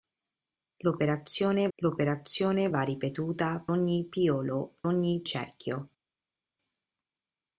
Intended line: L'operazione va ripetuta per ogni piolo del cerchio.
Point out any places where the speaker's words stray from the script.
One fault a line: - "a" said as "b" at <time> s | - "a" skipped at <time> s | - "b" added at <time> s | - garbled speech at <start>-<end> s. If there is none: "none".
- "l'operazione" added at 1.8 s
- "per" skipped at 3.6 s
- "del" said as "ogni" at 4.8 s